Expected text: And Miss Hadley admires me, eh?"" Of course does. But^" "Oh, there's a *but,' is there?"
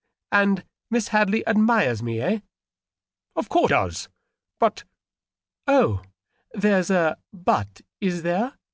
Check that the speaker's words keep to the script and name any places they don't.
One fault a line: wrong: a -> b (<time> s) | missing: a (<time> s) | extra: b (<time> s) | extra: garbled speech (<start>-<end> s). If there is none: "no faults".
no faults